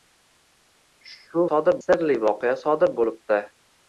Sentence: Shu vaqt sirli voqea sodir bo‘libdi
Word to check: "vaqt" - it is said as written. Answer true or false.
false